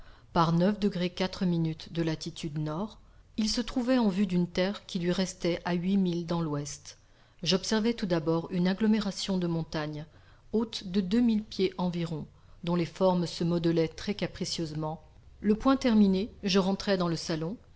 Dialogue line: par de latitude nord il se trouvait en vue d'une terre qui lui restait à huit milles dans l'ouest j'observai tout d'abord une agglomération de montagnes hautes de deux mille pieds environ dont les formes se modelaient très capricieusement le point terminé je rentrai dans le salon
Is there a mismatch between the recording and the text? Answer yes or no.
no